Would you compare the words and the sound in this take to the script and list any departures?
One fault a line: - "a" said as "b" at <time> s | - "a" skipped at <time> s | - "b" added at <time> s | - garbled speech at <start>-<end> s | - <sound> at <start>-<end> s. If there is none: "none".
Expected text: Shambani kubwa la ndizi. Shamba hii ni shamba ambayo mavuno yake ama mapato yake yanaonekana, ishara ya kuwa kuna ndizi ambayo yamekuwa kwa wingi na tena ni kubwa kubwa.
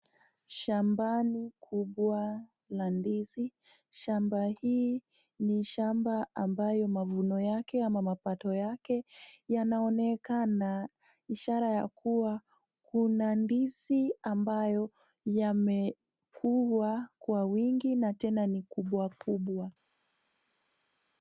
none